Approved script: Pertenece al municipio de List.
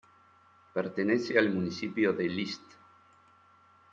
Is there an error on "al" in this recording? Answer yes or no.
no